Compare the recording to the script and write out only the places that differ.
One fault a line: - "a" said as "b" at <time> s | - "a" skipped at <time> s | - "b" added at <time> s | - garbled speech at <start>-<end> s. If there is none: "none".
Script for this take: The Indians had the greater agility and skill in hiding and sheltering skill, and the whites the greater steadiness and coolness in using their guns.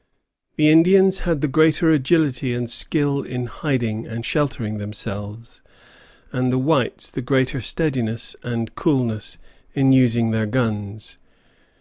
- "skill" said as "themselves" at 4.8 s